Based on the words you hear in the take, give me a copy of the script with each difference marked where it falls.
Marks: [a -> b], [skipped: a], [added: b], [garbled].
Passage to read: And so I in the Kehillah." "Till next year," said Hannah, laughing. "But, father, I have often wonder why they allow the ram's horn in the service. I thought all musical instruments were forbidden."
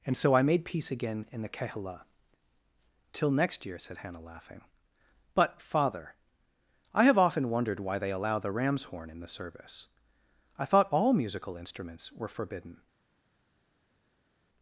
And so I [added: made peace again] in the Kehillah." "Till next year," said Hannah, laughing. "But, father, I have often [wonder -> wondered] why they allow the ram's horn in the service. I thought all musical instruments were forbidden."